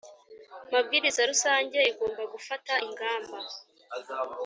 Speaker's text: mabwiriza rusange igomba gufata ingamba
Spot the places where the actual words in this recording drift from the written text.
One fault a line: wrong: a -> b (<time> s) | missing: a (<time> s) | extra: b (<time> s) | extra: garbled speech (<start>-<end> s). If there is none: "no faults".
no faults